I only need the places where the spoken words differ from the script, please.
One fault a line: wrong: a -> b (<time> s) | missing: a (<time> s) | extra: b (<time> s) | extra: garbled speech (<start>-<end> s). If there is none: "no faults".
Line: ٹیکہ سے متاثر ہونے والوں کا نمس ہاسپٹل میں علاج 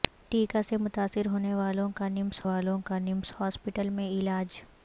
extra: والوں کا نمس (2.4 s)